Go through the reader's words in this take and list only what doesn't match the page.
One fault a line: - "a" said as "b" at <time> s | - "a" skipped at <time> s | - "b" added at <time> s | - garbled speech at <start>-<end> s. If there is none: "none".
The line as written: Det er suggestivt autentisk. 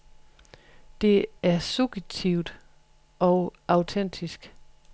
- "og" added at 3.2 s